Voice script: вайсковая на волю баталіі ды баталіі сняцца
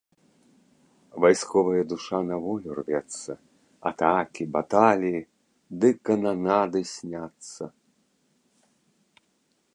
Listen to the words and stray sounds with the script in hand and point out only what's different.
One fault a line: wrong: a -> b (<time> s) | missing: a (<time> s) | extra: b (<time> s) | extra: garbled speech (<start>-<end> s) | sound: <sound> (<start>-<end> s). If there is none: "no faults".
extra: душа (1.9 s)
extra: рвецца атакі (2.8 s)
wrong: баталіі -> кананады (6.1 s)